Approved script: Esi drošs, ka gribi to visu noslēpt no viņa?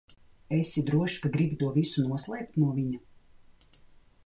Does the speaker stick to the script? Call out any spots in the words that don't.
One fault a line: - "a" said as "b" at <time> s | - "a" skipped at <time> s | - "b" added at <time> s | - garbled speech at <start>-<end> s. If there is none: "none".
none